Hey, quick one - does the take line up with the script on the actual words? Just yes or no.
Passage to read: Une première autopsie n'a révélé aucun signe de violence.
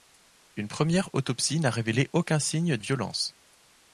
no